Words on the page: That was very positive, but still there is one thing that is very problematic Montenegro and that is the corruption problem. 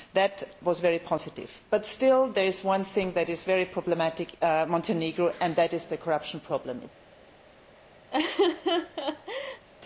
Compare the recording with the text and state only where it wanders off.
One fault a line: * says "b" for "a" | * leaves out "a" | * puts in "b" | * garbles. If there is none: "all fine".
all fine